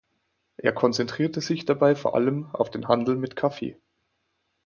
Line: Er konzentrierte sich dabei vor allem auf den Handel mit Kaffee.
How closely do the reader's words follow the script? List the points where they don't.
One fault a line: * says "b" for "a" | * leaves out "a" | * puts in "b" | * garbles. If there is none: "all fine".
all fine